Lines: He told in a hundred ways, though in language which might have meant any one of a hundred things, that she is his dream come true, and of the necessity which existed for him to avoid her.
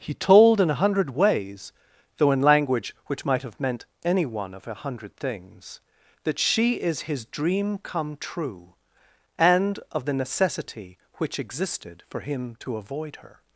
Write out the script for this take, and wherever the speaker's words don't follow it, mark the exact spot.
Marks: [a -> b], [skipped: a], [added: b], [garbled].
He told in a hundred ways, though in language which might have meant any one of a hundred things, that she is his dream come true, and of the necessity which existed for him to avoid her.